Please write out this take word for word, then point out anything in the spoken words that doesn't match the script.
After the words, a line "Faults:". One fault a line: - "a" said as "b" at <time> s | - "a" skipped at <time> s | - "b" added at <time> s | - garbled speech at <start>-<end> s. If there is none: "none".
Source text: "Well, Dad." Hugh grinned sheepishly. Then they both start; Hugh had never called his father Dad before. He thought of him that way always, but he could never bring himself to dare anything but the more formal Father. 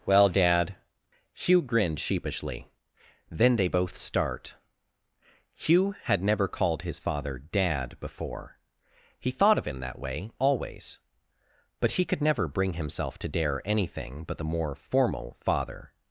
"Well, Dad." Hugh grinned sheepishly. Then they both start; Hugh had never called his father Dad before. He thought of him that way always, but he could never bring himself to dare anything but the more formal Father.
Faults:
none